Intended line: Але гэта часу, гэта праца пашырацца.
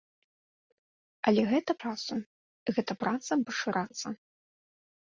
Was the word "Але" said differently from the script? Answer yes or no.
no